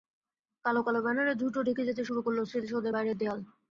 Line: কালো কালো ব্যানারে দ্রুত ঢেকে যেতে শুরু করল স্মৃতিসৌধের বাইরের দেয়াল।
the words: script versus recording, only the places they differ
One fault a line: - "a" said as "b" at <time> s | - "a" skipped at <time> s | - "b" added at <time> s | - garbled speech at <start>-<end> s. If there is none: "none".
none